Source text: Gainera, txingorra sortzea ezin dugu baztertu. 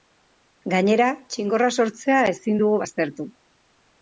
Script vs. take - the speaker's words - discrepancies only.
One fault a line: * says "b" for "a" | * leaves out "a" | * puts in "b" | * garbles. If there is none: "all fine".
all fine